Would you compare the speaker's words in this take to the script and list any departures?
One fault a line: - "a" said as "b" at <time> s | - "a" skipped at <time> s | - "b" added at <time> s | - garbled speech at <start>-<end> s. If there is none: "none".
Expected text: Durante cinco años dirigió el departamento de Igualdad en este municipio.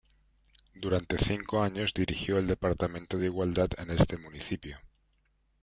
none